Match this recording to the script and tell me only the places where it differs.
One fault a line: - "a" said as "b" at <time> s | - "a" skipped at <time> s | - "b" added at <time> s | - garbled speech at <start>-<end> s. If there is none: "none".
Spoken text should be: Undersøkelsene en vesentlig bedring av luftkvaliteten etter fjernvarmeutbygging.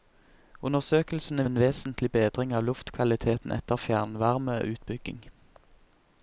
none